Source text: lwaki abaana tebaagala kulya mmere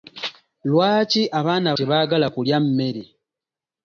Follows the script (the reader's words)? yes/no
yes